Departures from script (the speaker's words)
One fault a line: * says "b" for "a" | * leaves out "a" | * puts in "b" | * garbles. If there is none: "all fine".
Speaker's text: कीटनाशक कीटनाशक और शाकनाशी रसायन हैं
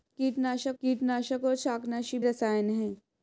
all fine